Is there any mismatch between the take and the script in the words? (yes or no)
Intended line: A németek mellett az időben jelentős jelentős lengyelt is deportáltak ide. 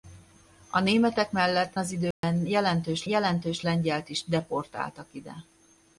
no